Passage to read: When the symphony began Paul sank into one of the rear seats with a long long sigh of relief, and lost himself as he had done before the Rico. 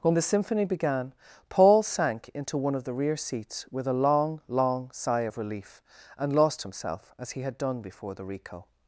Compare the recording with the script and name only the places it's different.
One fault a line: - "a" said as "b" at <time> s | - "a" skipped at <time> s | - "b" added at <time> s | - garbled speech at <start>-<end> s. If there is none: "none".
none